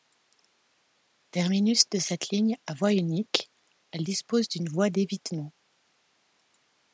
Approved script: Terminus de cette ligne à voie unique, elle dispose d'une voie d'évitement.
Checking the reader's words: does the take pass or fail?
pass